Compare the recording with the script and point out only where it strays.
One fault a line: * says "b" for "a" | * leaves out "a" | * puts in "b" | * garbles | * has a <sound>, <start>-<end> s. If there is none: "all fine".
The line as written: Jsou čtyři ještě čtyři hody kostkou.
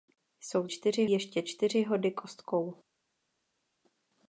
all fine